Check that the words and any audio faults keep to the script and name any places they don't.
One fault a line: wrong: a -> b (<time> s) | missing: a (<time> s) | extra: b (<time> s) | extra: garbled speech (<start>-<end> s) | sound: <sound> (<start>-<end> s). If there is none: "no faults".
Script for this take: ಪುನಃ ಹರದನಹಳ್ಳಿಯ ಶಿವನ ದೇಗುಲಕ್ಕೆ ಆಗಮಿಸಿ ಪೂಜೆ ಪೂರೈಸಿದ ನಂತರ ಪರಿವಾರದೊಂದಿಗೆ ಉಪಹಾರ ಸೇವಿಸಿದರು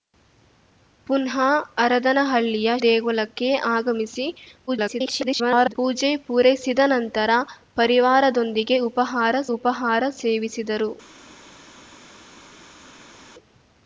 missing: ಶಿವನ (2.7 s)
extra: garbled speech (4.7-5.7 s)
extra: ಉಪಹಾರ (9.6 s)